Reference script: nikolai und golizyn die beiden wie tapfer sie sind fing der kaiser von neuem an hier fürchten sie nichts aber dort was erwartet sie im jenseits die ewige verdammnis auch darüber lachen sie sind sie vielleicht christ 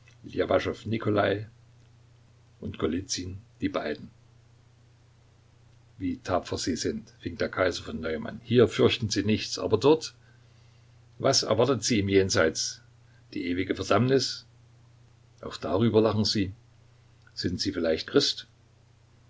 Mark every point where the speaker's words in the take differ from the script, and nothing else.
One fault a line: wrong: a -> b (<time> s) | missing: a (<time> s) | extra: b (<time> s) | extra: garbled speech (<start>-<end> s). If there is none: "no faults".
no faults